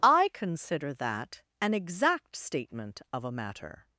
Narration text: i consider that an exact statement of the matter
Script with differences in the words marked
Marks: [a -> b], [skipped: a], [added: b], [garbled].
i consider that an exact statement of [the -> a] matter